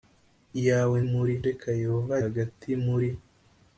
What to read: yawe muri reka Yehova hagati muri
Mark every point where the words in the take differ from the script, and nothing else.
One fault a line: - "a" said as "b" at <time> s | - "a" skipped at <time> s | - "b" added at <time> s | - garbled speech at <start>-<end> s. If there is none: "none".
none